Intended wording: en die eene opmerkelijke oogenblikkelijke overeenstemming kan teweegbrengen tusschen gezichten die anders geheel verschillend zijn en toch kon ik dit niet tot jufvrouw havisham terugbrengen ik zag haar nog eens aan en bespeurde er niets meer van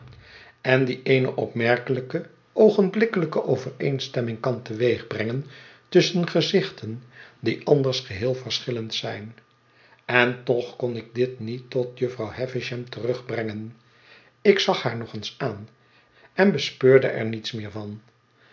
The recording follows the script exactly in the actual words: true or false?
true